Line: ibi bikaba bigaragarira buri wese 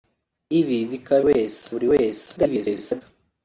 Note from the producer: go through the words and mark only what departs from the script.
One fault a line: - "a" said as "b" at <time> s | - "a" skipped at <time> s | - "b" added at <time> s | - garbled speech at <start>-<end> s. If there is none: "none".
- "bigaragarira" said as "wese" at 1.3 s
- garbled speech at 2.4-3.0 s